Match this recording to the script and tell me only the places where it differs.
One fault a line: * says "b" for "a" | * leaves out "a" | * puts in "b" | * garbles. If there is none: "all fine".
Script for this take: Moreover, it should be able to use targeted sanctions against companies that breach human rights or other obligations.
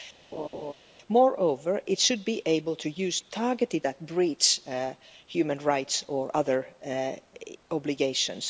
* leaves out "sanctions against companies"